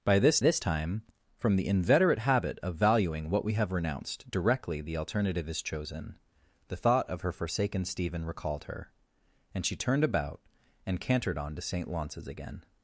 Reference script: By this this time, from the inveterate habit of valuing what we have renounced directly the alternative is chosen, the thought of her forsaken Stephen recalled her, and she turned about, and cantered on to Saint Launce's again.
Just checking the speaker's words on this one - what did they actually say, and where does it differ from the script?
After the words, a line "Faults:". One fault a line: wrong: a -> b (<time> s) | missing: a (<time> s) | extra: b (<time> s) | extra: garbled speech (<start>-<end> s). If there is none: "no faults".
By this this time, from the inveterate habit of valuing what we have renounced directly the alternative is chosen, the thought of her forsaken Stephen recalled her, and she turned about, and cantered on to Saint Launce's again.
Faults:
no faults